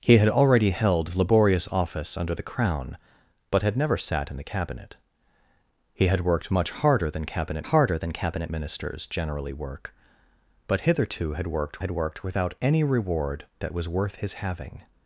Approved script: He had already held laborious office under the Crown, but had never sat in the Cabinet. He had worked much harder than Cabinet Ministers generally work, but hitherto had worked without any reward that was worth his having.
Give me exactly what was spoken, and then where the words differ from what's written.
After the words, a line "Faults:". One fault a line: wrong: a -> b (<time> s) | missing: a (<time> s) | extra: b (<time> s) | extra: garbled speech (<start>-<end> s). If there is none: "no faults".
He had already held laborious office under the Crown, but had never sat in the Cabinet. He had worked much harder than Cabinet harder than Cabinet Ministers generally work, but hitherto had worked had worked without any reward that was worth his having.
Faults:
extra: harder than Cabinet (7.6 s)
extra: had worked (11.8 s)